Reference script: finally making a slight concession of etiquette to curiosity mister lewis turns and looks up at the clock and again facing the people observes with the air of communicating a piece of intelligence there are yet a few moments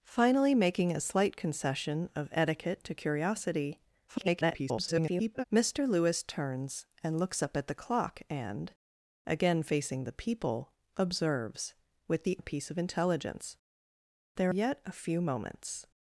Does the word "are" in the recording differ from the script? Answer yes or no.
yes